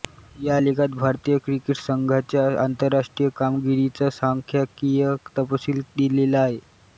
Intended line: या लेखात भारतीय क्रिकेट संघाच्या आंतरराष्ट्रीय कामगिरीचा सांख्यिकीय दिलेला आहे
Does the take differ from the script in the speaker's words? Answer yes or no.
yes